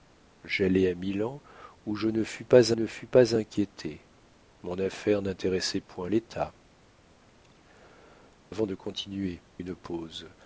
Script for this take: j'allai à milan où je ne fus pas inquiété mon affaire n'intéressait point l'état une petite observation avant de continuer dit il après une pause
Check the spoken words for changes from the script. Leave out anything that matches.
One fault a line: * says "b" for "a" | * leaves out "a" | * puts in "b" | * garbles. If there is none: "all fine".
* puts in "ne fus pas"
* leaves out "une petite observation"
* leaves out "dit il après"